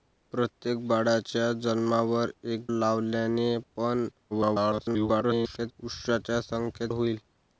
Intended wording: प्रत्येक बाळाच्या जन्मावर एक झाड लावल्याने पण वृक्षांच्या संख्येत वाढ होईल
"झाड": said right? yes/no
no